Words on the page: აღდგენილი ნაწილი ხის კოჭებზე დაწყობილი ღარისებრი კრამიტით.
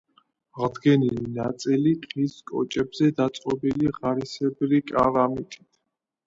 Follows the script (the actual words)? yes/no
yes